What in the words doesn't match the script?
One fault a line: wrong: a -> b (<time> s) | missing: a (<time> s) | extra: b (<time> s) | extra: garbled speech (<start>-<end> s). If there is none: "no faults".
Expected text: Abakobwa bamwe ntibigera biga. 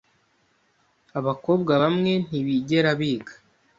no faults